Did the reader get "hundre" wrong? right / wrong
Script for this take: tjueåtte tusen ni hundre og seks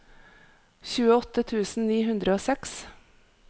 right